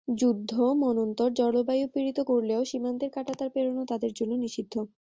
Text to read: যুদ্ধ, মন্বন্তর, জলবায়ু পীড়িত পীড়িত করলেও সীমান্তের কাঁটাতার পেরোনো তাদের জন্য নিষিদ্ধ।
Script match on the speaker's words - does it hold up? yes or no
no